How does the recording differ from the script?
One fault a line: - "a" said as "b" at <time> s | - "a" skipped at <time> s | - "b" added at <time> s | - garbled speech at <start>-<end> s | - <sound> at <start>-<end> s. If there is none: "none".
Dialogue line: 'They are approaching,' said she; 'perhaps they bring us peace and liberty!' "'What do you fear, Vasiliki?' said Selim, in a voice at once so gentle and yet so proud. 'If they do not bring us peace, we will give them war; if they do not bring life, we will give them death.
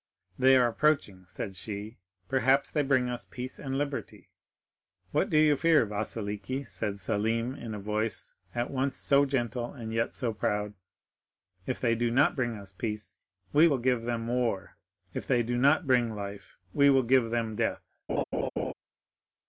- laugh at 18.1-18.7 s